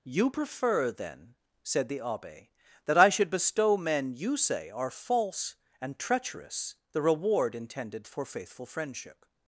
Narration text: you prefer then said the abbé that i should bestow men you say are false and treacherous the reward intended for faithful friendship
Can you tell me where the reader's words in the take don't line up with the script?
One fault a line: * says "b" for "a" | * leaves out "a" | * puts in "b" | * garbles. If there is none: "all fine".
all fine